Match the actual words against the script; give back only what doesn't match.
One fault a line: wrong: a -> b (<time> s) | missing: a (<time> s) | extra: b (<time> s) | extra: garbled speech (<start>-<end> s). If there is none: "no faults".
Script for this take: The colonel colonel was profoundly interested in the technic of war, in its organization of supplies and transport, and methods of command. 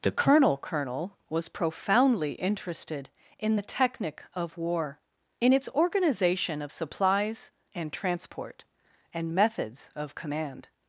no faults